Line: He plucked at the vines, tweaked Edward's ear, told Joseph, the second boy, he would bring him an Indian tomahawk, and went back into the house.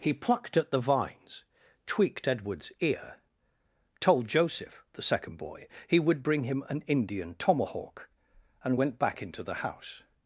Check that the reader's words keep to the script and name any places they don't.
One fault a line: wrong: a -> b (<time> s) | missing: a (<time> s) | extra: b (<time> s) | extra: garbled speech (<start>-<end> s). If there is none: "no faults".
no faults